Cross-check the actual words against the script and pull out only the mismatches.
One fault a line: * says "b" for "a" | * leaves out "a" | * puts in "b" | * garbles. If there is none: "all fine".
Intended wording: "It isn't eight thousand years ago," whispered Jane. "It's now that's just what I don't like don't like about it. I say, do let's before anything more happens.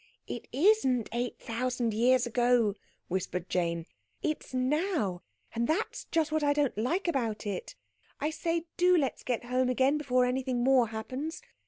* puts in "and"
* leaves out "don't like"
* puts in "get home again"